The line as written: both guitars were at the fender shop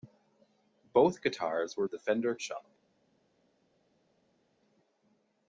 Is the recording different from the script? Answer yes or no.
no